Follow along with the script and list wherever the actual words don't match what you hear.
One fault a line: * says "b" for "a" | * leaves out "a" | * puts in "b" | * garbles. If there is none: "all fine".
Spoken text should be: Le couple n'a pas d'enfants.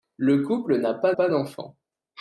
* puts in "pas"